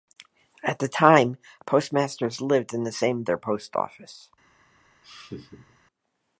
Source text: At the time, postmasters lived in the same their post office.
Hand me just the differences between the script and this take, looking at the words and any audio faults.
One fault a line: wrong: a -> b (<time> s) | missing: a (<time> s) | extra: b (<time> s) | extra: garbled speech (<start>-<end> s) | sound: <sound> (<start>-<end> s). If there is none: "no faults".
sound: laugh (5.0-5.8 s)